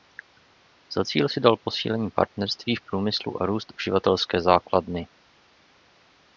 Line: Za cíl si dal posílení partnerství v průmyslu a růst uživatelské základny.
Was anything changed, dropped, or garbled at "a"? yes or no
no